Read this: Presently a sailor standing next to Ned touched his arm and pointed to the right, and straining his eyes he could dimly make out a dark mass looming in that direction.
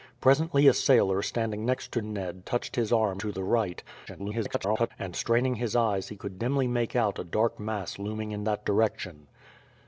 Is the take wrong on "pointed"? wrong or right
wrong